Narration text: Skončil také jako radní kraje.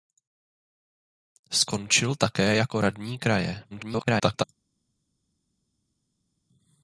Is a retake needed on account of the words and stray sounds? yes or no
yes